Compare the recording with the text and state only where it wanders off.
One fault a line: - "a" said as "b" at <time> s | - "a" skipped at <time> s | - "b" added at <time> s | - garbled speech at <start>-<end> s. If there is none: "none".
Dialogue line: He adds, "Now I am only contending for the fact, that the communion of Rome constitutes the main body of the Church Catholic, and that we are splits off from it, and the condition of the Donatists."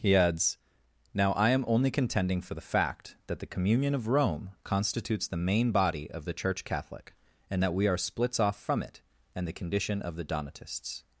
none